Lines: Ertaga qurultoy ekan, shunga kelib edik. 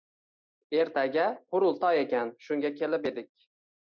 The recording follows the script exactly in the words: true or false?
true